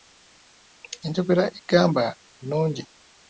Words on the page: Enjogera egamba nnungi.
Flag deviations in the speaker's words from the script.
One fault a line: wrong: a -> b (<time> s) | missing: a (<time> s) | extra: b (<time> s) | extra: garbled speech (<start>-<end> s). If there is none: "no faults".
no faults